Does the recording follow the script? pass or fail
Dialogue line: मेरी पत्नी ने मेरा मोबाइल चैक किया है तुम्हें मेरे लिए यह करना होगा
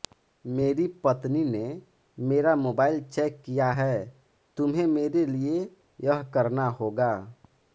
pass